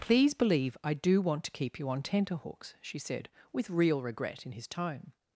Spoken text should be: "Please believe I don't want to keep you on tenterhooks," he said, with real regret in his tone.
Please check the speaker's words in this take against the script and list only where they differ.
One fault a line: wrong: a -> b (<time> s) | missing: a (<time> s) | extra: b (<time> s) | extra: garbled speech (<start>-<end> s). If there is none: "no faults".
wrong: don't -> do (0.9 s)
wrong: he -> she (2.8 s)